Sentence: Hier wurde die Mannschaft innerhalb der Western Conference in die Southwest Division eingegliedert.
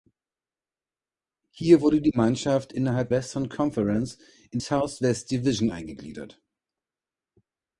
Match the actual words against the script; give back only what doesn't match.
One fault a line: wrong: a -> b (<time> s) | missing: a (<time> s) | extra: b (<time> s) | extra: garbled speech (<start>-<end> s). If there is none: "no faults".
missing: der (3.1 s)
missing: die (4.6 s)